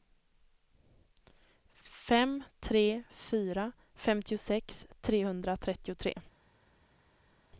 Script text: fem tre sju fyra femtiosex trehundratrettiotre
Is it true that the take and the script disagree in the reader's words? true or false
true